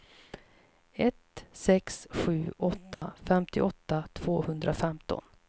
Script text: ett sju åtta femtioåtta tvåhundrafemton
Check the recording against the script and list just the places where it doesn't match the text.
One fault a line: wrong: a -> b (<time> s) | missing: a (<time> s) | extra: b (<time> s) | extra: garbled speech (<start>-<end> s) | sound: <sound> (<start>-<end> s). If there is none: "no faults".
extra: sex (1.5 s)
sound: dropout (2.9-3.0 s)